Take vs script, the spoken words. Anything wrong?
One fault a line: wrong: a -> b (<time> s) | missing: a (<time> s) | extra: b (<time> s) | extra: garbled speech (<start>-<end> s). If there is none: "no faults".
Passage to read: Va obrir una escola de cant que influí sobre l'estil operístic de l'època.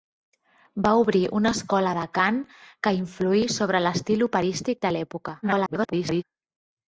extra: garbled speech (5.4-6.2 s)